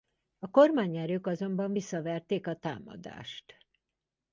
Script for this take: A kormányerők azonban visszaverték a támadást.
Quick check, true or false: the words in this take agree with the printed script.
true